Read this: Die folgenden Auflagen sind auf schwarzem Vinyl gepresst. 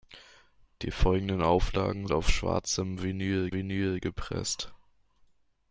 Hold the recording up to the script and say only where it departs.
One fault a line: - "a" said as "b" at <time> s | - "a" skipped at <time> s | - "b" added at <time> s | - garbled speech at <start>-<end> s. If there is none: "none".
- "sind" skipped at 2.1 s
- "Vinyl" added at 3.5 s